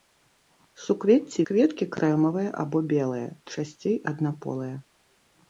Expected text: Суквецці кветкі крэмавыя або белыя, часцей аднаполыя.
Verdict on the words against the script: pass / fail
pass